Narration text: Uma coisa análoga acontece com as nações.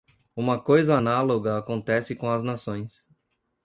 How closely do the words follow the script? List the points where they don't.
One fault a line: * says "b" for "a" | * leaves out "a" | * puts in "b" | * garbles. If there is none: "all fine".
all fine